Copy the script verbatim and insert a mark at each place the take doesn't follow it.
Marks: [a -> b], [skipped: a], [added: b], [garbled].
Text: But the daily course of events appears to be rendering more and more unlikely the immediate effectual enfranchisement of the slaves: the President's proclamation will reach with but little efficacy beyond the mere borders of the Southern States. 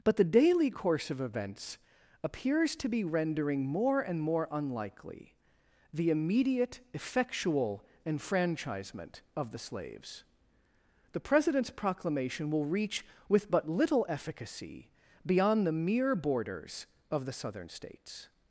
But the daily course of events appears to be rendering more and more unlikely the immediate effectual enfranchisement of the slaves: the President's proclamation will reach with but little efficacy beyond the mere borders of the Southern States.